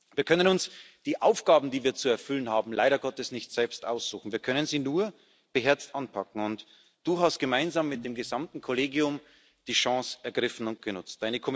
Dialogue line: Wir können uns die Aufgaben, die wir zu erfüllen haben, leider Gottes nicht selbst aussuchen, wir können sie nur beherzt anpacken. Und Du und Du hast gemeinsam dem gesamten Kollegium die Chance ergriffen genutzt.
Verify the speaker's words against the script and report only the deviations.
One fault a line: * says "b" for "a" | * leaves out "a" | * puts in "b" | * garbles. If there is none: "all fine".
* leaves out "und Du"
* puts in "mit"
* puts in "und"